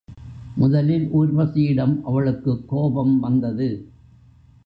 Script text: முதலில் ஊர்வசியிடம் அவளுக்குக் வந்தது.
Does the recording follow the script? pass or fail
fail